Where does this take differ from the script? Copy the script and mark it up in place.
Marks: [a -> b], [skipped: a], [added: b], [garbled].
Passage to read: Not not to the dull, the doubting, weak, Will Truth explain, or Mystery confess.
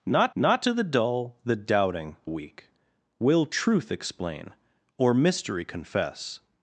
Not not to the dull, the doubting, weak, Will Truth explain, or Mystery confess.